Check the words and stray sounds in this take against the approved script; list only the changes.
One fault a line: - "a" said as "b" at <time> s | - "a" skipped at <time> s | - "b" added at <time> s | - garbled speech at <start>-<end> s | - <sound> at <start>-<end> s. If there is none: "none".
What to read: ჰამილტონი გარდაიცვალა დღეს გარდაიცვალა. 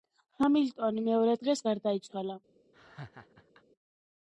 - "გარდაიცვალა" said as "მეორე" at 1.1 s
- laugh at 2.7-3.6 s